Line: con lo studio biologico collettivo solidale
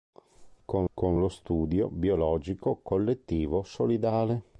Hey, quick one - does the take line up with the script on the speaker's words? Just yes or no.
no